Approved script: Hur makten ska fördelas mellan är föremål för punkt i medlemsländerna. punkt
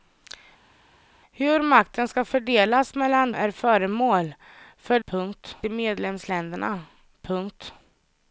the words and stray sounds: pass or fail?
pass